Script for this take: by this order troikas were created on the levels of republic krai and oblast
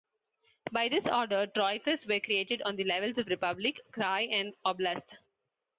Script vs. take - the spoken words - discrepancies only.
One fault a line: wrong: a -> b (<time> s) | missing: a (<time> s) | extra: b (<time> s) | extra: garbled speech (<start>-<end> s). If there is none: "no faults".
no faults